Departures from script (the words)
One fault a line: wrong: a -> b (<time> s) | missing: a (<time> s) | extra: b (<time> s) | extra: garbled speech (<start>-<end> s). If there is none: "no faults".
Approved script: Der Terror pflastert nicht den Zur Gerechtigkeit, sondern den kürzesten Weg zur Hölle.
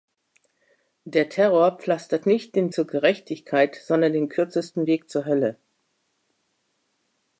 no faults